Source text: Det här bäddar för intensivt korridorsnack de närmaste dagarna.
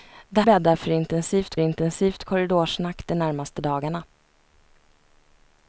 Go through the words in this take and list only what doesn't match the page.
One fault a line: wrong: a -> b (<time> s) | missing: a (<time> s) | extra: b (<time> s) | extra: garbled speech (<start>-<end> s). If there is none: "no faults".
missing: här (0.4 s)
extra: intensivt (1.6 s)